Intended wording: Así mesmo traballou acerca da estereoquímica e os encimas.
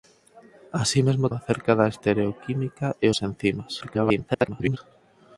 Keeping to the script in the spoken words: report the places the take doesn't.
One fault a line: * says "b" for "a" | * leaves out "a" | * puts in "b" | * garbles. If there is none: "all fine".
* leaves out "traballou"
* garbles